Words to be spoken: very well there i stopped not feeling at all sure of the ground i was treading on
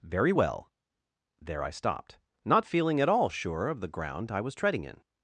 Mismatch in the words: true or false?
true